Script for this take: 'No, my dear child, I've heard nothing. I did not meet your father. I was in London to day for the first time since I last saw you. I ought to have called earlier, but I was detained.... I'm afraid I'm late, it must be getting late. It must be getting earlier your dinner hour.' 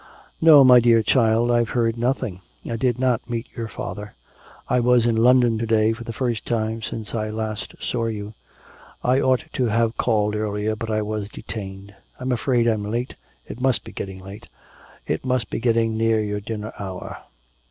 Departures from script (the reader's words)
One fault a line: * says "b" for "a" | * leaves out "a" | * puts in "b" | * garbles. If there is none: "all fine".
* says "near" for "earlier"